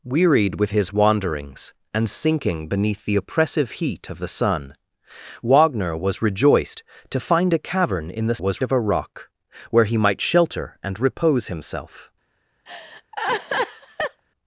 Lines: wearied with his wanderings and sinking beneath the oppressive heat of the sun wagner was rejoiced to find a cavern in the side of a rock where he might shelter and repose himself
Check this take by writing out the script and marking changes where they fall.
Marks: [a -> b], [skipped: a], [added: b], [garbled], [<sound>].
wearied with his wanderings and sinking beneath the oppressive heat of the sun wagner was rejoiced to find a cavern in the [side -> was] of a rock where he might shelter and repose himself [laugh]